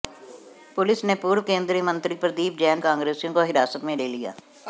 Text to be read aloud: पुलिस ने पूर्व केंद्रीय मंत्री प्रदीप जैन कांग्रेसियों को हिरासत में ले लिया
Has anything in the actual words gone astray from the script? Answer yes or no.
no